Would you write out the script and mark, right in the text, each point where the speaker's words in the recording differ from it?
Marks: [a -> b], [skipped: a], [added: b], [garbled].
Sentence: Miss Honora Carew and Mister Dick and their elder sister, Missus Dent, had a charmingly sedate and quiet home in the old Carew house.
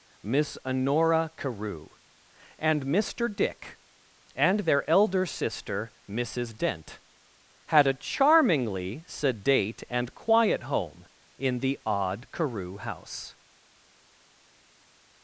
Miss Honora Carew and Mister Dick and their elder sister, Missus Dent, had a charmingly sedate and quiet home in the [old -> odd] Carew house.